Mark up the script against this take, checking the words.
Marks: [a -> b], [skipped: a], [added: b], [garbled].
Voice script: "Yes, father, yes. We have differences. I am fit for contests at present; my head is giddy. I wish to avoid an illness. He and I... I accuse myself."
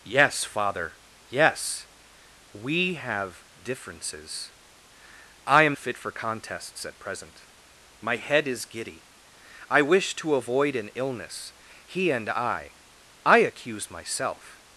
"Yes, father, yes. We have differences. I am fit for contests at present; my head is giddy. I wish to avoid an illness. He and I... I accuse myself."